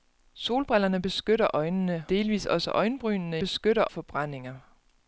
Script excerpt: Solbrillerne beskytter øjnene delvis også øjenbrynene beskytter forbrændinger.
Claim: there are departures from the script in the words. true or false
false